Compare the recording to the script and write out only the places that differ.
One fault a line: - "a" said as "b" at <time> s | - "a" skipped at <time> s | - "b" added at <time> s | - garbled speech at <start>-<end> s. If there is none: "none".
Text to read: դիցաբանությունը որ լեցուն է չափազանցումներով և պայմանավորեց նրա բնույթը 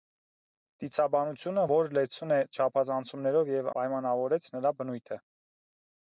none